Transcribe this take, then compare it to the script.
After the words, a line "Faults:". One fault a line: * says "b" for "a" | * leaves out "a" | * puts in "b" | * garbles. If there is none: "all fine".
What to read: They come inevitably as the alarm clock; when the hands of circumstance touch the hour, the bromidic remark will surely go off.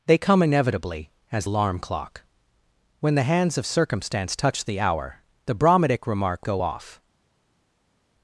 They come inevitably as alarm clock; when the hands of circumstance touch the hour, the bromidic remark go off.
Faults:
* leaves out "the"
* leaves out "will surely"